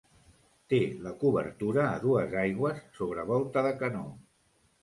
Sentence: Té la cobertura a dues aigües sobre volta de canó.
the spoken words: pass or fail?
pass